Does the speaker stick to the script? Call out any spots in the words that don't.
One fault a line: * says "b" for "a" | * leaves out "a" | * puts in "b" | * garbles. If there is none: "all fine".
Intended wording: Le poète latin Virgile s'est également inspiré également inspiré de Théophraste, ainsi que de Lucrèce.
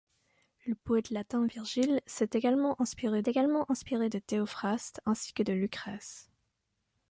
all fine